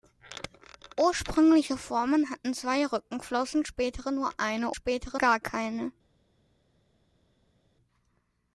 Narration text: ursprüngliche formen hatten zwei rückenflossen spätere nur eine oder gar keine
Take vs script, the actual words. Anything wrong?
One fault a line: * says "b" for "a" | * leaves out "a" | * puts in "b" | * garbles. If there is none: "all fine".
* says "spätere" for "oder"